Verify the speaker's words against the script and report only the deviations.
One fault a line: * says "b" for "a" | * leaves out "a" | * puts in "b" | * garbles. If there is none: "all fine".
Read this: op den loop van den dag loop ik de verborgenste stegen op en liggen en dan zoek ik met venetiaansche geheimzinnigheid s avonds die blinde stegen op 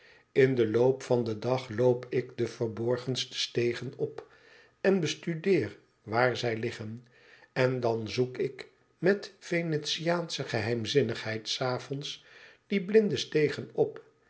* says "in" for "op"
* puts in "bestudeer waar zij"